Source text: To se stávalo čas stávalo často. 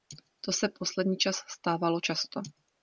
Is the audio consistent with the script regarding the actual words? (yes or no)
no